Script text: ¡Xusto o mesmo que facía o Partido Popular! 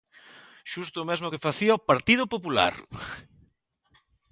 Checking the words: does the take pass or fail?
pass